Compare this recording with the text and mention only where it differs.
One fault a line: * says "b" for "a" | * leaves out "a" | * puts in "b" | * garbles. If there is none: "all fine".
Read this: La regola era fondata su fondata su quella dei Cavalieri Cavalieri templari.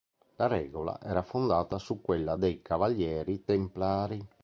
* leaves out "fondata su"
* leaves out "Cavalieri"